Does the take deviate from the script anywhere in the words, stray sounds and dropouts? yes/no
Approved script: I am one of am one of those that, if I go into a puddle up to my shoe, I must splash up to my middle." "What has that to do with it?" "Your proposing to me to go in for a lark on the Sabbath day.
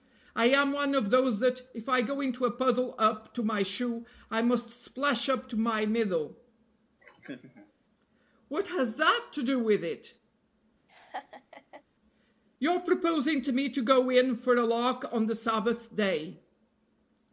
yes